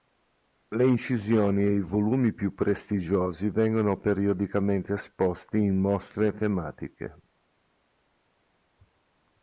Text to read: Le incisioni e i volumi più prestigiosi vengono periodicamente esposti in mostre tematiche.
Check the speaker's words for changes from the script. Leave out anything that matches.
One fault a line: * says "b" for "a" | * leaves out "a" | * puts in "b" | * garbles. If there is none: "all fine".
all fine